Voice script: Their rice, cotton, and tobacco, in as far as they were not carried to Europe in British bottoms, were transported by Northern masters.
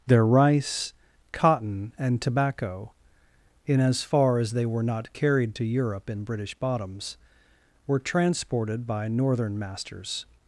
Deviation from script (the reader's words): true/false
false